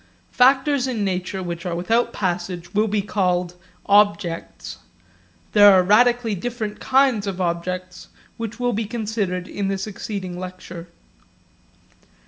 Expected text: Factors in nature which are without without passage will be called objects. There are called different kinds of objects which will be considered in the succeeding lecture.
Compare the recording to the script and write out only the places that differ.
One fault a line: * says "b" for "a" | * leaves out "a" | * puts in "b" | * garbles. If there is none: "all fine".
* leaves out "without"
* says "radically" for "called"